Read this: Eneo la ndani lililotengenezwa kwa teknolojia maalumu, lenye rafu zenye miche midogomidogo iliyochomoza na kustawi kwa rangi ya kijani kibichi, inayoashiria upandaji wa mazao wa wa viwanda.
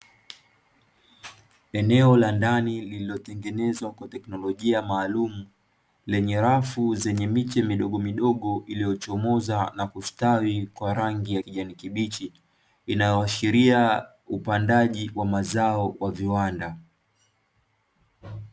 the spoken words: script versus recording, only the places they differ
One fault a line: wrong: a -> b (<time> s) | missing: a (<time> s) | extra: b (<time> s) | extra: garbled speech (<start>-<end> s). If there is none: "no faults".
missing: wa (16.1 s)